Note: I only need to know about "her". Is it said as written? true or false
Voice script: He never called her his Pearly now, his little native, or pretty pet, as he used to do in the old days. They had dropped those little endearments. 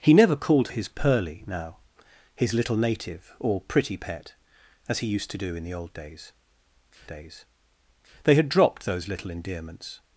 false